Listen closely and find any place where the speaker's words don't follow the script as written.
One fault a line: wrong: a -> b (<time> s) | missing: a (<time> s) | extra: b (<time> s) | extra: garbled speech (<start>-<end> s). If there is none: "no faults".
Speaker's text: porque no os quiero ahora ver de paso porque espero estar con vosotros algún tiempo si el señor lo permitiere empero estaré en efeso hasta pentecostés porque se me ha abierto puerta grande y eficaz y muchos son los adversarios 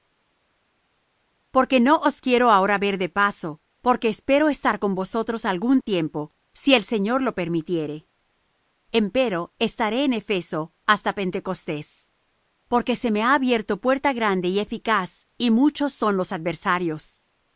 no faults